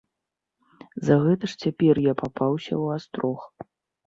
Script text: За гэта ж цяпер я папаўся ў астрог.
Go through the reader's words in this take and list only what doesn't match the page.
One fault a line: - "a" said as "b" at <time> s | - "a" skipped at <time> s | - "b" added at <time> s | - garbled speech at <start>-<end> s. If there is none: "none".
none